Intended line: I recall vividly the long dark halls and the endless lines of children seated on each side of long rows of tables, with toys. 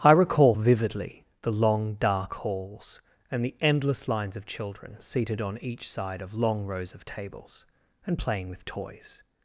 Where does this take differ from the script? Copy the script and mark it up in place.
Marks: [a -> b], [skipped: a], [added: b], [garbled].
I recall vividly the long dark halls and the endless lines of children seated on each side of long rows of tables, [added: and playing] with toys.